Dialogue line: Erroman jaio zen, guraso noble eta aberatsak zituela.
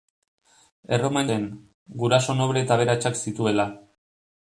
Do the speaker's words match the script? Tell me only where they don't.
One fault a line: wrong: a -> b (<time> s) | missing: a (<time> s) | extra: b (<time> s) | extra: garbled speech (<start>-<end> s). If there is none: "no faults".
missing: jaio (1.3 s)